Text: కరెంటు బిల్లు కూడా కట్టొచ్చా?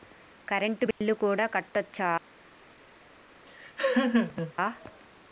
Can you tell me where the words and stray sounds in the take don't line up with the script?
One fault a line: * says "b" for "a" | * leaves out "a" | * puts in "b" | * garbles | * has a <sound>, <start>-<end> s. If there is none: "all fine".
* has a dropout, 0.9-1.0 s
* has a laugh, 3.5-4.5 s